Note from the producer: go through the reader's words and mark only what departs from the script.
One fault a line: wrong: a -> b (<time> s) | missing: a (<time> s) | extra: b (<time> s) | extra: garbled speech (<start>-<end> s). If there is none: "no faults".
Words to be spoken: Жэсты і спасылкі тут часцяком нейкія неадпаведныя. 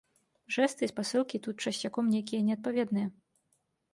no faults